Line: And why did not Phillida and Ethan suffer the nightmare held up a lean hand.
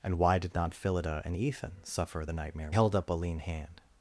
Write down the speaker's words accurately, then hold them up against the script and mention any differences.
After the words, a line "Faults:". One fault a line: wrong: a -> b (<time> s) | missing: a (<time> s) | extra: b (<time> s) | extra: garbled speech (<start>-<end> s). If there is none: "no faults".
And why did not Phillida and Ethan suffer the nightmare held up a lean hand.
Faults:
no faults